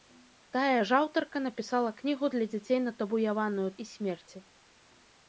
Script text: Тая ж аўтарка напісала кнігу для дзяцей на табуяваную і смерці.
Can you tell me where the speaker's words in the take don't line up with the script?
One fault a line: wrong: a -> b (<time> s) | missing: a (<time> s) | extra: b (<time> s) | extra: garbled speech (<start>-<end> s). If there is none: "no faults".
no faults